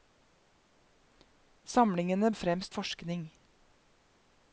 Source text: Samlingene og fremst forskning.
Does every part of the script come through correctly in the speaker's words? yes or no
yes